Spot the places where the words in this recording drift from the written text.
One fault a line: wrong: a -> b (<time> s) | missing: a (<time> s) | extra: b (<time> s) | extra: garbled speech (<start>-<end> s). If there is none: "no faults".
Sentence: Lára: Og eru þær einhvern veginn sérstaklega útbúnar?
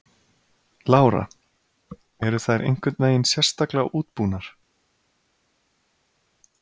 missing: Og (1.2 s)